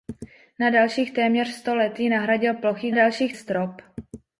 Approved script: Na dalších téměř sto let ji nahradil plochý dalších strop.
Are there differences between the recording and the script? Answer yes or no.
no